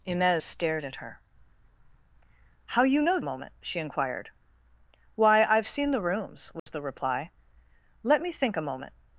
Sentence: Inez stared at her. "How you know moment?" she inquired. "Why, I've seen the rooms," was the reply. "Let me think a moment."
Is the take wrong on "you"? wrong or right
right